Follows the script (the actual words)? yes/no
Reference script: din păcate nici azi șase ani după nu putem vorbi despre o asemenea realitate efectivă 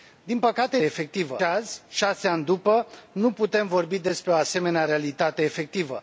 no